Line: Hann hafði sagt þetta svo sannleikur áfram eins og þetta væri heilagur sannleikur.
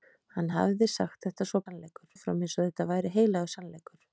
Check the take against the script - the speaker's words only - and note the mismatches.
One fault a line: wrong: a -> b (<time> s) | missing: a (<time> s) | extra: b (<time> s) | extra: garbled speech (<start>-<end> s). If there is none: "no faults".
no faults